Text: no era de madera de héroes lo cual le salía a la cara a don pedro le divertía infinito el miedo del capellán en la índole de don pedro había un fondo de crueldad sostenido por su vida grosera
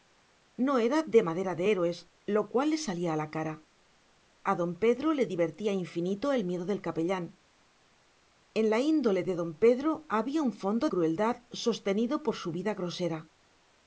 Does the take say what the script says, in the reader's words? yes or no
no